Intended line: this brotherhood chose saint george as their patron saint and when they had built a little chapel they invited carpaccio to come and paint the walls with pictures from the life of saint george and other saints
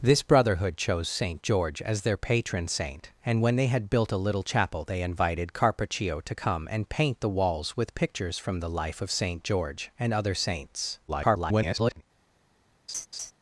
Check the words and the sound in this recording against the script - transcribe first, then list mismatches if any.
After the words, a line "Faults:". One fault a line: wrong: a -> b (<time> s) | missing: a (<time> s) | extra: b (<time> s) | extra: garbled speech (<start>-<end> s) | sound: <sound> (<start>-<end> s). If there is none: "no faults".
this brotherhood chose saint george as their patron saint and when they had built a little chapel they invited carpaccio to come and paint the walls with pictures from the life of saint george and other saints [garbled]
Faults:
extra: garbled speech (11.1-12.0 s)
sound: laugh (12.9-13.3 s)